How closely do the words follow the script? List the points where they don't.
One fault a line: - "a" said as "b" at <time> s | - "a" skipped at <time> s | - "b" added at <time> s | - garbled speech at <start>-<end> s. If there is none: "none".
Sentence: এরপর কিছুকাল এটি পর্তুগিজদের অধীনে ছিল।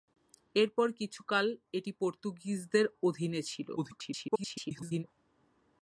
- garbled speech at 3.8-5.0 s